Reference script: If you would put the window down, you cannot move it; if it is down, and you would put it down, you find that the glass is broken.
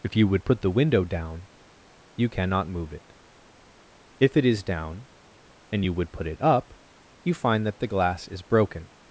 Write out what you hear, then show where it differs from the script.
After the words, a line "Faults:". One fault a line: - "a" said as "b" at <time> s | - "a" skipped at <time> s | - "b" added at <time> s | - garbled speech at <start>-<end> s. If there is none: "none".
If you would put the window down, you cannot move it; if it is down, and you would put it up, you find that the glass is broken.
Faults:
- "down" said as "up" at 6.4 s